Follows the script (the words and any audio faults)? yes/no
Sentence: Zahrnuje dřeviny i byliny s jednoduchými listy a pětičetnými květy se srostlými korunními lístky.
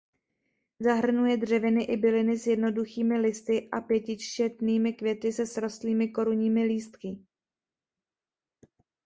yes